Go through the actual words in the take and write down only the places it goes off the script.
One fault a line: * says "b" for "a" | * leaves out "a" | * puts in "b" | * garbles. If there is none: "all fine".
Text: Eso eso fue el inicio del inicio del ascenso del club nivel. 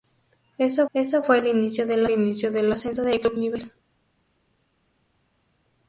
all fine